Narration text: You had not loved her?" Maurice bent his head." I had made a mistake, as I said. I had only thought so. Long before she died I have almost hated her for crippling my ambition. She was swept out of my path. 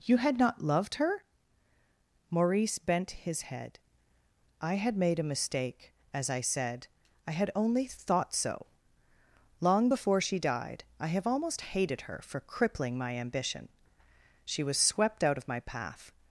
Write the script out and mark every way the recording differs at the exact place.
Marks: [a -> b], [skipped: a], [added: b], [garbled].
You had not loved her?" Maurice bent his head." I had made a mistake, as I said. I had only thought so. Long before she died I have almost hated her for crippling my ambition. She was swept out of my path.